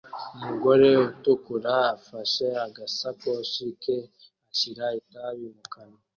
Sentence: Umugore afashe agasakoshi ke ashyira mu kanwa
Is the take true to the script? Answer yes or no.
no